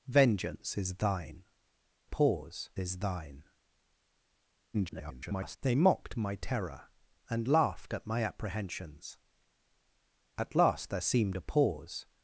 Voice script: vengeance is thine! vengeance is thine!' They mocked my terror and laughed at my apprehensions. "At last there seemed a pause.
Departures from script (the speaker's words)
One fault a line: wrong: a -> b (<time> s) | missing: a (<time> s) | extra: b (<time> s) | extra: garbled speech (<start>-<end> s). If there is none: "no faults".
wrong: vengeance -> pause (2.0 s)
extra: garbled speech (4.7-5.6 s)